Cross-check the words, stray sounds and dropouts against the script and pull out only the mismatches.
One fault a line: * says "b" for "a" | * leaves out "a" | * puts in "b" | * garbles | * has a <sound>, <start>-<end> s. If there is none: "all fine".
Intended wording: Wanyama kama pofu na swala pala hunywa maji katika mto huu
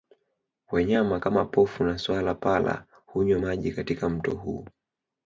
all fine